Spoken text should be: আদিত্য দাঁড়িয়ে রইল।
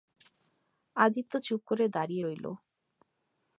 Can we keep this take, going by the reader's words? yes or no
no